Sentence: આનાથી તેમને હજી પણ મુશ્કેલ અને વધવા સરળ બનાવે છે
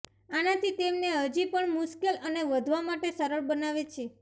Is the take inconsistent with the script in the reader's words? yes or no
yes